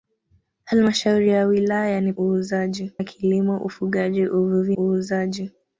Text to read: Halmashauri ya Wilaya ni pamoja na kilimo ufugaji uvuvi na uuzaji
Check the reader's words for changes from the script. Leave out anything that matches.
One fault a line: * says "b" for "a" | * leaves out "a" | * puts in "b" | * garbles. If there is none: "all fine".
* says "uuzaji" for "pamoja"
* leaves out "na"